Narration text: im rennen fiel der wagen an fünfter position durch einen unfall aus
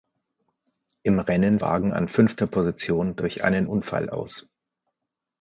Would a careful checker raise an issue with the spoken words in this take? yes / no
yes